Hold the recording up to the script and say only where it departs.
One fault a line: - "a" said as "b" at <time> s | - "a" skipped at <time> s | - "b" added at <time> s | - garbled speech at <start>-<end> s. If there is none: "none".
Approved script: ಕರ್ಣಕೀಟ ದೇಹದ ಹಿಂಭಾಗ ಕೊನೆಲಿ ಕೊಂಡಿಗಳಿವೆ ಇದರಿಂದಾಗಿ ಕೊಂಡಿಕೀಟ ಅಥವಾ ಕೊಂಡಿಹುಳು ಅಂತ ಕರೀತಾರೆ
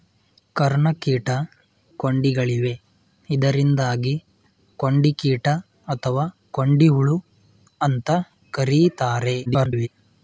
- "ದೇಹದ ಹಿಂಭಾಗ ಕೊನೆಲಿ" skipped at 1.3 s
- garbled speech at 9.5-9.9 s